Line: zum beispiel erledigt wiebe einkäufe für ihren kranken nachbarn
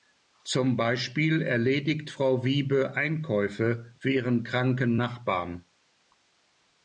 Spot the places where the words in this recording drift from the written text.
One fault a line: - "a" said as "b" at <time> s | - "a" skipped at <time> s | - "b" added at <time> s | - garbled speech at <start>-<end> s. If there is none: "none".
- "frau" added at 2.1 s